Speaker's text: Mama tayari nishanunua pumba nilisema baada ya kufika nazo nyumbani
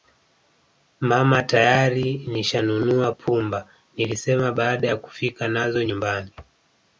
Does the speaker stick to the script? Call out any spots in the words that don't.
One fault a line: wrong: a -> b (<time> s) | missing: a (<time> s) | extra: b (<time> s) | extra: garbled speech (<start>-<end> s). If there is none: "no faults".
no faults